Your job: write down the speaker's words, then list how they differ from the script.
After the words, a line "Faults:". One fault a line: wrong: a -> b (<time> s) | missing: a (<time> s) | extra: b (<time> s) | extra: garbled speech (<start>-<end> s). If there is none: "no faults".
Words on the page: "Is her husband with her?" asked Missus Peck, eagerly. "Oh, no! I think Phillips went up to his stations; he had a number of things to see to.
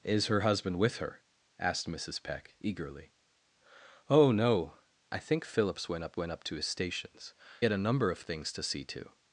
"Is her husband with her?" asked Missus Peck, eagerly. "Oh, no! I think Phillips went up went up to his stations; had a number of things to see to.
Faults:
extra: went up (6.2 s)
missing: he (7.3 s)